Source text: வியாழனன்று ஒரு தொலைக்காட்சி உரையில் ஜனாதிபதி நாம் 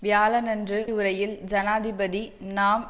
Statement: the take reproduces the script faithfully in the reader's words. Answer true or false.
false